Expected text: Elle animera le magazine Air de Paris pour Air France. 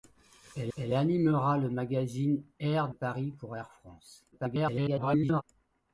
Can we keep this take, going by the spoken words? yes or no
no